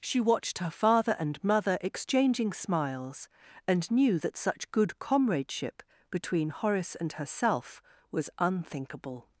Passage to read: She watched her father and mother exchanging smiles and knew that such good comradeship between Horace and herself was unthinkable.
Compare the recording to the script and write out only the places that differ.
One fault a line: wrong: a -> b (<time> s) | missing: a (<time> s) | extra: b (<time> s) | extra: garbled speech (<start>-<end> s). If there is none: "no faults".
no faults